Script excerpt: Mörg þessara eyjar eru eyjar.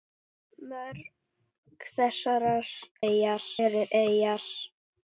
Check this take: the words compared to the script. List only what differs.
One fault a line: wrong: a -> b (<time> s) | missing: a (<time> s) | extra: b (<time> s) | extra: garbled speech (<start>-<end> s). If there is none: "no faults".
no faults